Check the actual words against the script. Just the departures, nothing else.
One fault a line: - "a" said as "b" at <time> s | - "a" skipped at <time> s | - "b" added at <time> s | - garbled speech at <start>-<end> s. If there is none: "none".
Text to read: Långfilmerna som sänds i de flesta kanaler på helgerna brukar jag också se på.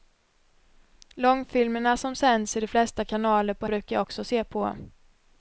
- "helgerna" skipped at 3.7 s